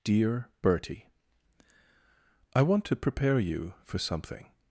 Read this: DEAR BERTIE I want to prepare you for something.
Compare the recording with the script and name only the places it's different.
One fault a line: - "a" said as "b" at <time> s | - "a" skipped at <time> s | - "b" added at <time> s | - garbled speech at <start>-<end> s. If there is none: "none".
none